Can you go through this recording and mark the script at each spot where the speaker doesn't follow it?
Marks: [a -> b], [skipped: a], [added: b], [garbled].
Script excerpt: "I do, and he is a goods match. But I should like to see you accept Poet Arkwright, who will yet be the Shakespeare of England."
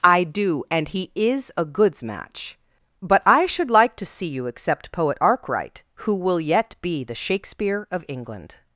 "I do, and he is a goods match. But I should like to see you accept Poet Arkwright, who will yet be the Shakespeare of England."